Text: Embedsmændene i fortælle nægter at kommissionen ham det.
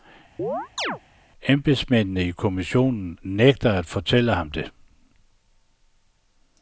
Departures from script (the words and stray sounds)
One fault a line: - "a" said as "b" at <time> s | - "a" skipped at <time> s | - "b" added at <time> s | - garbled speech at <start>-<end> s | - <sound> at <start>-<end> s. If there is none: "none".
- chirp at 0.4-1.0 s
- "fortælle" said as "kommissionen" at 2.3 s
- "kommissionen" said as "fortælle" at 3.9 s